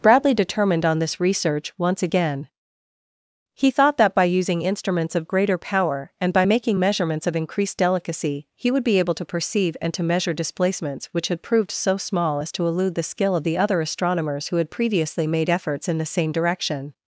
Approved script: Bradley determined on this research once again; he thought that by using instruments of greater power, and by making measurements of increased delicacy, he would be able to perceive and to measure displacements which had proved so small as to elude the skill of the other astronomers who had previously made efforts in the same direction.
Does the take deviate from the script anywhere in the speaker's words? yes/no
no